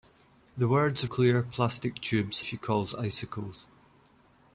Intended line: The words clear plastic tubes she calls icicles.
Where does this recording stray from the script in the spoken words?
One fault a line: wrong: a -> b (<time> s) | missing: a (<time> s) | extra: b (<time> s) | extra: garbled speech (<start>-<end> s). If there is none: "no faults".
no faults